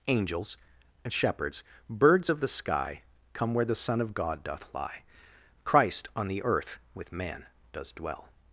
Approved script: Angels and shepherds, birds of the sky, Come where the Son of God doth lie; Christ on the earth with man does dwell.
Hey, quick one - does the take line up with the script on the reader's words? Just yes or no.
yes